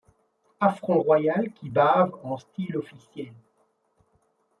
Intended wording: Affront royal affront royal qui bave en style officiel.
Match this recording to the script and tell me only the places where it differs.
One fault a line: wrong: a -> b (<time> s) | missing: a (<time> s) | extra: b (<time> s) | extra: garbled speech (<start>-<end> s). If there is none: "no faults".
missing: affront royal (1.5 s)